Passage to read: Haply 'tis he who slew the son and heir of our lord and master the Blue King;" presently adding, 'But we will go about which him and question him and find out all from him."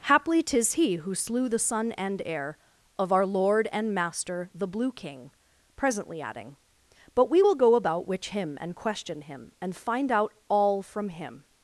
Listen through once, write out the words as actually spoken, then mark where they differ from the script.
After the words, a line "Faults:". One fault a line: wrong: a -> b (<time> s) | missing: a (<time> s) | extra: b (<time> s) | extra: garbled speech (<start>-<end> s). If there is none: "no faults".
Haply 'tis he who slew the son and heir of our lord and master the Blue King;" presently adding, 'But we will go about which him and question him and find out all from him."
Faults:
no faults